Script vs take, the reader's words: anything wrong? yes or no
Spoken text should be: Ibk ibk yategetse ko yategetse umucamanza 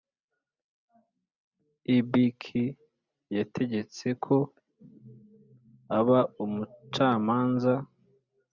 yes